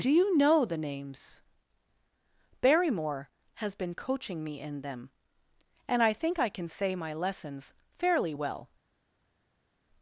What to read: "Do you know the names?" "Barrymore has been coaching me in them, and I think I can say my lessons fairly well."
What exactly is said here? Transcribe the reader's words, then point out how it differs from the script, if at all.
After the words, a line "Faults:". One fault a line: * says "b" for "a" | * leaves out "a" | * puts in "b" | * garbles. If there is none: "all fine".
"Do you know the names?" "Barrymore has been coaching me in them, and I think I can say my lessons fairly well."
Faults:
all fine